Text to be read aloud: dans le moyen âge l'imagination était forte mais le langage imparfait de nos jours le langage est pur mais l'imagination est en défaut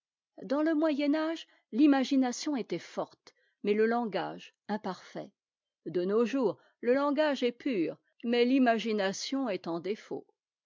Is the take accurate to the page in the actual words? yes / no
yes